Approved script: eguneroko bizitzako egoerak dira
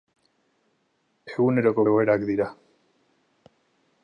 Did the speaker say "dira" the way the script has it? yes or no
yes